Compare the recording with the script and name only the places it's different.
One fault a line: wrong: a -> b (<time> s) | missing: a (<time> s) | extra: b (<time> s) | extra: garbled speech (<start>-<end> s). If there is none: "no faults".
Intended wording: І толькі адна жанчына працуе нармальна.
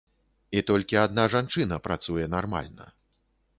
no faults